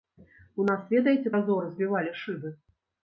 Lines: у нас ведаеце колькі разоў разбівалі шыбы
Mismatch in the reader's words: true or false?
true